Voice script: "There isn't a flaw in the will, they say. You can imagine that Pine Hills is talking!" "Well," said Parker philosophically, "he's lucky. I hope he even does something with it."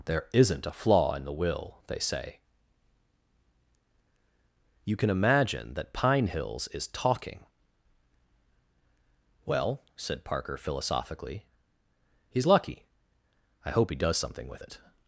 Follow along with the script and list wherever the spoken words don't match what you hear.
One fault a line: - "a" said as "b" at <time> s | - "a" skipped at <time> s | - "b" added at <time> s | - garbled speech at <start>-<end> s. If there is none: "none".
- "even" skipped at 13.9 s